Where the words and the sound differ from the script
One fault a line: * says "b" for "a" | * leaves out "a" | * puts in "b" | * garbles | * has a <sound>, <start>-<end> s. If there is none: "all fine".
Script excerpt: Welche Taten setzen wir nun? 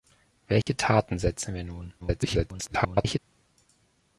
* has a dropout, 0.6-0.7 s
* garbles